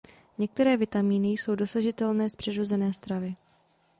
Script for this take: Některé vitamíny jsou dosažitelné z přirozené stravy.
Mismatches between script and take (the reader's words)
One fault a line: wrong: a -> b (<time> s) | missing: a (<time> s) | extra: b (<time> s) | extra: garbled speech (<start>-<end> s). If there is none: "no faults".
no faults